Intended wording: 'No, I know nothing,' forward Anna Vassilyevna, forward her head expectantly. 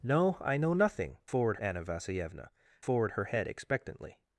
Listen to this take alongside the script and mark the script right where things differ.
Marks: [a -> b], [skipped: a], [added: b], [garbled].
'No, I know nothing,' forward Anna Vassilyevna, forward her head expectantly.